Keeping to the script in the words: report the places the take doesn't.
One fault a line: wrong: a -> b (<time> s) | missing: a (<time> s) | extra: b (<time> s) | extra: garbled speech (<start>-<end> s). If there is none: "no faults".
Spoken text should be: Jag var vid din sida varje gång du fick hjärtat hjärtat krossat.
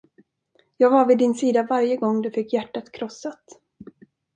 missing: hjärtat (2.9 s)